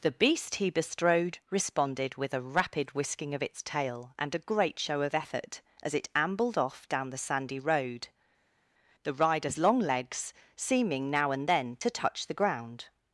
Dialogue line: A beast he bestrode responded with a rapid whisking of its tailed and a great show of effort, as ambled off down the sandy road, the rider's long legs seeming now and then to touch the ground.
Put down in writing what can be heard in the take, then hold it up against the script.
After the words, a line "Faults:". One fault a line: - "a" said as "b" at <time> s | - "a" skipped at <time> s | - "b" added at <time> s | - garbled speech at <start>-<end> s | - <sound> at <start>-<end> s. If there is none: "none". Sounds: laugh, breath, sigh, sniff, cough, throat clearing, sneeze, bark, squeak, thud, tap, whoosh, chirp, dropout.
The beast he bestrode responded with a rapid whisking of its tail and a great show of effort, as it ambled off down the sandy road, the rider's long legs seeming now and then to touch the ground.
Faults:
- "A" said as "The" at 0.0 s
- "tailed" said as "tail" at 3.6 s
- "it" added at 5.9 s